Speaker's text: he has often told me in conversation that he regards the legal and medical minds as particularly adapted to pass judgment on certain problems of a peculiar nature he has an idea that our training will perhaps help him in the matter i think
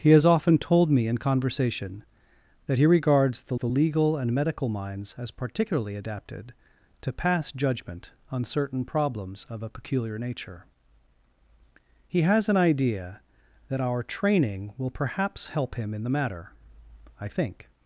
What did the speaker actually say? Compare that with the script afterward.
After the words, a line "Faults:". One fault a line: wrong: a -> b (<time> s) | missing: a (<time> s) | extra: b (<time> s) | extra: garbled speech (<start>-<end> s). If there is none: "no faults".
he has often told me in conversation that he regards the the legal and medical minds as particularly adapted to pass judgment on certain problems of a peculiar nature he has an idea that our training will perhaps help him in the matter i think
Faults:
extra: the (3.5 s)